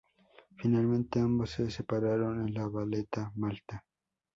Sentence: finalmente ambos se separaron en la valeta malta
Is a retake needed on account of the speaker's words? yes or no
no